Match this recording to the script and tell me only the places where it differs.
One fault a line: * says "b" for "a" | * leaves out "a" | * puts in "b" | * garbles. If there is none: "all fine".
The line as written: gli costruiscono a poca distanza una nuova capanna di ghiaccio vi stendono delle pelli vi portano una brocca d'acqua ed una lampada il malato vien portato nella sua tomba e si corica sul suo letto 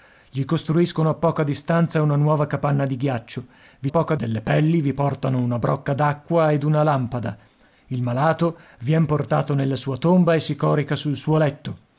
* says "poca" for "stendono"